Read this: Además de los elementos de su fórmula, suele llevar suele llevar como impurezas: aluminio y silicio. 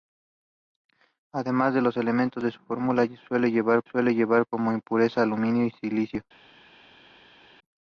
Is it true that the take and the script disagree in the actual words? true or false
false